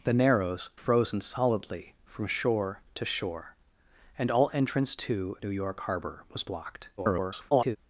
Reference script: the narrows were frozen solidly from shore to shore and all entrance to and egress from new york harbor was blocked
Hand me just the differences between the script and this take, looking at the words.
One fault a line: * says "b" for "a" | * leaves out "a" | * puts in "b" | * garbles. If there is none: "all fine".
* leaves out "were"
* leaves out "and egress from"
* garbles